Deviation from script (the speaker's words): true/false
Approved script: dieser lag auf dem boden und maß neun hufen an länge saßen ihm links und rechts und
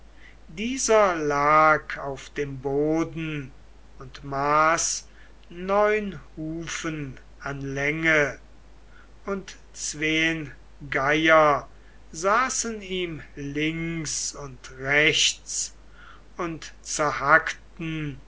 true